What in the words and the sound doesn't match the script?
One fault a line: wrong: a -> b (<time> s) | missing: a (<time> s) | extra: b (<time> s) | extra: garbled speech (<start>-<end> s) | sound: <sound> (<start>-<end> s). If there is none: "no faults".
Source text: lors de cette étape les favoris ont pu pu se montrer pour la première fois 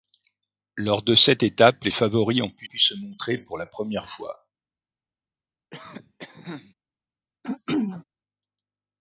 sound: cough (5.7-6.7 s)
sound: throat clearing (7.4-8.0 s)